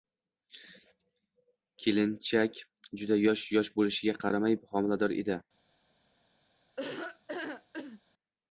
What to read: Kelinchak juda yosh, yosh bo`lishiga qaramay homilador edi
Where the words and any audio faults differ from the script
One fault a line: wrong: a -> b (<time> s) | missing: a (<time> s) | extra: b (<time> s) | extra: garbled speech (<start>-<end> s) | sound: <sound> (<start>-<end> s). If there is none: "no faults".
sound: laugh (6.8-8.0 s)